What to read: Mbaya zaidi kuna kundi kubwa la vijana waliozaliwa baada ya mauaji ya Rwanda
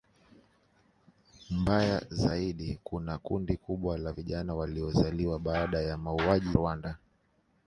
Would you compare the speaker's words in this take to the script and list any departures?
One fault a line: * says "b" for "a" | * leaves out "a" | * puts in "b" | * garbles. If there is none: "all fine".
* leaves out "ya"